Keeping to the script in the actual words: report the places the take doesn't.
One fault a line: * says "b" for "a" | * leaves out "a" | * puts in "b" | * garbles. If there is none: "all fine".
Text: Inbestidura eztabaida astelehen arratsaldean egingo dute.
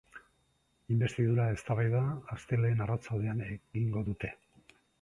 all fine